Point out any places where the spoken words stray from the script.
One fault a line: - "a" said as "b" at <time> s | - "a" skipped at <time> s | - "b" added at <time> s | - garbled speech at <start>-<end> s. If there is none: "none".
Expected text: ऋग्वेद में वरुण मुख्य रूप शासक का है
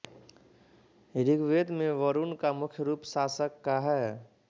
- "का" added at 2.4 s